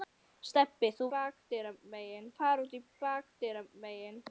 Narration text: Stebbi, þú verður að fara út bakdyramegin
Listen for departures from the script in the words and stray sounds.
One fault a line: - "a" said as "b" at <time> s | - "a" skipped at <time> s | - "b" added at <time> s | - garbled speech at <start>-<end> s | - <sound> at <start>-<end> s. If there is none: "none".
- "verður" said as "bakdyramegin" at 1.1 s